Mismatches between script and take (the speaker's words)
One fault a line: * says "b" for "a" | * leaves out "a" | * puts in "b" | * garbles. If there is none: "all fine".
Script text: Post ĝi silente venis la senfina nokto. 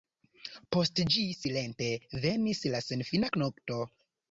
all fine